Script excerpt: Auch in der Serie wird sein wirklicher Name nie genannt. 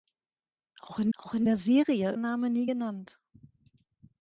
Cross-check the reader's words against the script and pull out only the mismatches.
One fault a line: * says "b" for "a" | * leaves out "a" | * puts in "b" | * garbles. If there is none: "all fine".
* puts in "auch in"
* leaves out "wird sein wirklicher"